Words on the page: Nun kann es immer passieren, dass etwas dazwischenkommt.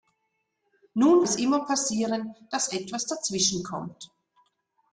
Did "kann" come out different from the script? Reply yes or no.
yes